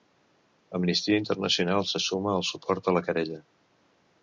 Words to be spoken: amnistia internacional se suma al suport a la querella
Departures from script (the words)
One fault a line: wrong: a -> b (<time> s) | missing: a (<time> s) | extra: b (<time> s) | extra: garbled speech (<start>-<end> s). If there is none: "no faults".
no faults